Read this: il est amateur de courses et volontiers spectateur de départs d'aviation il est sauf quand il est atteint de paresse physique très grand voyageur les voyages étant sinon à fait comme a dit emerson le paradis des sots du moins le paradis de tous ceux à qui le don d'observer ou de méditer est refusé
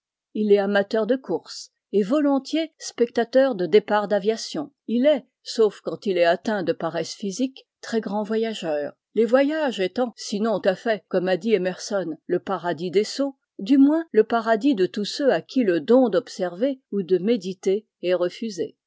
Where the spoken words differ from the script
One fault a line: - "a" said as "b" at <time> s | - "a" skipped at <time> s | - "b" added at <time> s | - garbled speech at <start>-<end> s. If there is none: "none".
none